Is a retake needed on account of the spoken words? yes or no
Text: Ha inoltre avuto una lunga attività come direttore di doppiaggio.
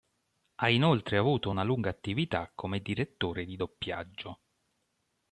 no